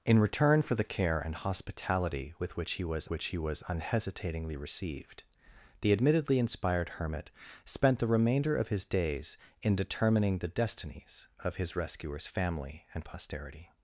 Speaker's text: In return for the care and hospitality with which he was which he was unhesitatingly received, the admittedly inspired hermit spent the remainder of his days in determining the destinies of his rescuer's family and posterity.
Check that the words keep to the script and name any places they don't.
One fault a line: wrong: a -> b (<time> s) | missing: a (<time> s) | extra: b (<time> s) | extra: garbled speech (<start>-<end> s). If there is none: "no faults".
no faults